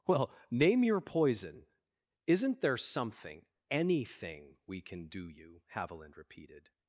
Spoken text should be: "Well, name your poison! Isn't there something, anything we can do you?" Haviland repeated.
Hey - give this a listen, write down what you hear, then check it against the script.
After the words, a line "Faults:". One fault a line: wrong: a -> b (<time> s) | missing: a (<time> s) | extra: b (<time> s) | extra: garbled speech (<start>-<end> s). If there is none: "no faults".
"Well, name your poison! Isn't there something, anything we can do you?" Haviland repeated.
Faults:
no faults